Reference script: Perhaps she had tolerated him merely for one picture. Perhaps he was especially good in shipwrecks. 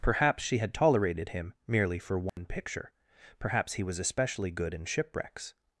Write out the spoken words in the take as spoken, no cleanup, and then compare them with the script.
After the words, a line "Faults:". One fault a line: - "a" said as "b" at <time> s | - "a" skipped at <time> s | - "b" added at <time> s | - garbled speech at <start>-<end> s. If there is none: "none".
Perhaps she had tolerated him merely for one picture. Perhaps he was especially good in shipwrecks.
Faults:
none